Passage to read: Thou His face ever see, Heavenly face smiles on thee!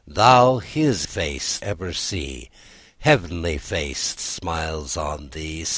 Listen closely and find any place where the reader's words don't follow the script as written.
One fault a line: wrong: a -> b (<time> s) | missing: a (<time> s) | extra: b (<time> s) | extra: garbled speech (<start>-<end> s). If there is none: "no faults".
no faults